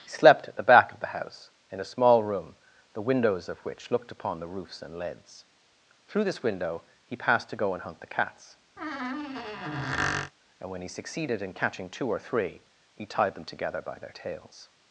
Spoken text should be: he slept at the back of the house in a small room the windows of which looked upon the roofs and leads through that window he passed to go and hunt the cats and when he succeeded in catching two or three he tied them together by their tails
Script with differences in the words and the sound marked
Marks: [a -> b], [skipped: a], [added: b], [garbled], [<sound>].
he slept at the back of the house in a small room the windows of which looked upon the roofs and leads through [that -> this] window he passed to go and hunt the cats [squeak] and when he succeeded in catching two or three he tied them together by their tails